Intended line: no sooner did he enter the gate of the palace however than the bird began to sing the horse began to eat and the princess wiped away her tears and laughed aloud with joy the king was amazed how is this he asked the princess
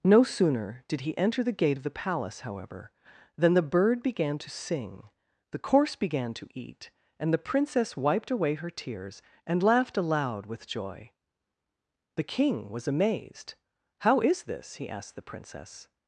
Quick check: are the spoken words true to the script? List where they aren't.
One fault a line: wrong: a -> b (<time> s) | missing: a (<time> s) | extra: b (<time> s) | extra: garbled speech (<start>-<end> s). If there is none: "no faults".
wrong: horse -> course (5.6 s)